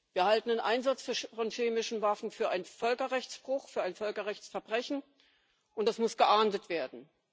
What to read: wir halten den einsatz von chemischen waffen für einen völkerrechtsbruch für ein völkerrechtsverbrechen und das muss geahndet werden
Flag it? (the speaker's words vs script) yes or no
no